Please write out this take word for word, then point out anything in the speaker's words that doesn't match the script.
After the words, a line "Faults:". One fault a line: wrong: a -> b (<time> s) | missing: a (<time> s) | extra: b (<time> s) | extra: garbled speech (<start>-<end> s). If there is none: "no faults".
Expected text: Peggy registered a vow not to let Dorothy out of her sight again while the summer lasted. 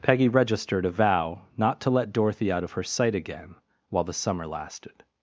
Peggy registered a vow not to let Dorothy out of her sight again while the summer lasted.
Faults:
no faults